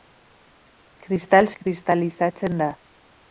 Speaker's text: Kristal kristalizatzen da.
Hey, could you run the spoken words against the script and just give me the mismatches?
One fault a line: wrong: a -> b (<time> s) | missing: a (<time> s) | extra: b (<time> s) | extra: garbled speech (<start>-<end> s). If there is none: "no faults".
no faults